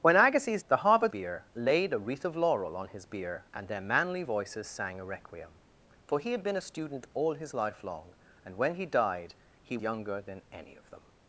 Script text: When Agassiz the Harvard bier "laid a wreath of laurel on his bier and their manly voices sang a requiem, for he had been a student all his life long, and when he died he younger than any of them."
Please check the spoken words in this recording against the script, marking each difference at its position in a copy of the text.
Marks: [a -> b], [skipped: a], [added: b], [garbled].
When Agassiz the Harvard bier "laid a wreath of laurel on his bier and their manly voices sang a requiem, for he had been a student all his life long, and when he died he younger than any of them."